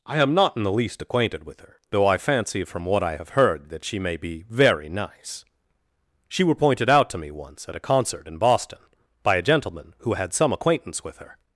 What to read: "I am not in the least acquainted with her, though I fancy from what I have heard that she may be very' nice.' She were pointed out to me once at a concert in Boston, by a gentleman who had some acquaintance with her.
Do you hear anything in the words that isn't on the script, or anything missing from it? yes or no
no